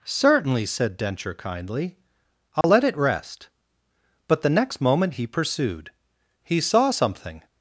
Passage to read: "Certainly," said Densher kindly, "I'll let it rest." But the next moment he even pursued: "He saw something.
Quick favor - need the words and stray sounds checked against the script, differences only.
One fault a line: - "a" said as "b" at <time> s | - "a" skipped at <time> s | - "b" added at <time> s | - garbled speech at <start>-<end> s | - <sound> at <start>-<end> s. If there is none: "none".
- dropout at 2.6-2.6 s
- "even" skipped at 5.3 s